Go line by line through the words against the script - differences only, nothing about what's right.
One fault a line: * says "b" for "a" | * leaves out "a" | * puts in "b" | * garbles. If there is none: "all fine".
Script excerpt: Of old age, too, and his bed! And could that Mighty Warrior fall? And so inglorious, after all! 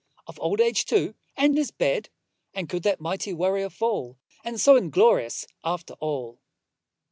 all fine